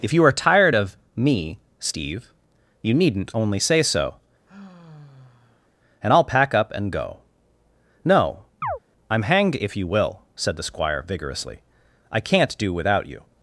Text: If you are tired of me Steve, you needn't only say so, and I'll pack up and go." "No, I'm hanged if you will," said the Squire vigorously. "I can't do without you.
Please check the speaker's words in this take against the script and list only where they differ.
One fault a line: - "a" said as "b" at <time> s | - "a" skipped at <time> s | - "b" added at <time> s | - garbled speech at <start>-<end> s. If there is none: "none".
none